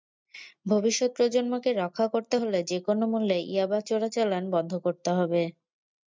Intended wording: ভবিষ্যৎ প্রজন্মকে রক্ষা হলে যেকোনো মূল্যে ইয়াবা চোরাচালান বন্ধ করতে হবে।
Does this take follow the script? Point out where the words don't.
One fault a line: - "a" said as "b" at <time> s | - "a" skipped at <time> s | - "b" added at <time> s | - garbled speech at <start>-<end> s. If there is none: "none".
- "করতে" added at 2.1 s